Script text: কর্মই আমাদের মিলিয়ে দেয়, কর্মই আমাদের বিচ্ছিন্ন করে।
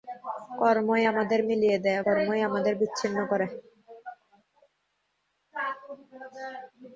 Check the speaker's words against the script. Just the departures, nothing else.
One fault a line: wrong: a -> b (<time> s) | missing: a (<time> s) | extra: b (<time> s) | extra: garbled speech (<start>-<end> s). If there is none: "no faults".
no faults